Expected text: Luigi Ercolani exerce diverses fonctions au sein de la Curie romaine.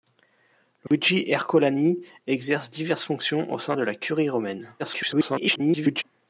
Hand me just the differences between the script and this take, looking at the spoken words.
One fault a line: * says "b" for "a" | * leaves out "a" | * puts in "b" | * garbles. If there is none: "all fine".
* garbles